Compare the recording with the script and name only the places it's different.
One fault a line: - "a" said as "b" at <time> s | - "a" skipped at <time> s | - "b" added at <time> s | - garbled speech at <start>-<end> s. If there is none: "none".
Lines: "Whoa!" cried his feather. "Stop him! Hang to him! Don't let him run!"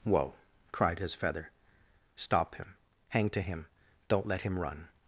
none